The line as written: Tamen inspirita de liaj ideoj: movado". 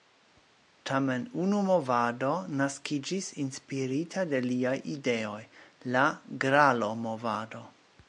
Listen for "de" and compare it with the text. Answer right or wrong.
right